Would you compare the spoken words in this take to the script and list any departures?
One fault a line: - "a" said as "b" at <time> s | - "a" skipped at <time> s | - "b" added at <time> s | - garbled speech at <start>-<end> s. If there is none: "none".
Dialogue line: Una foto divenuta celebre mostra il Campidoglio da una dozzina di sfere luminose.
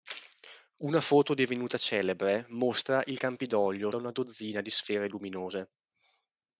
none